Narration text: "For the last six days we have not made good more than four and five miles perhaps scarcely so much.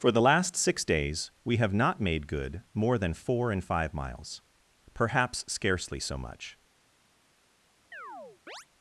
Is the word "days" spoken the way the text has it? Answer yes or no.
yes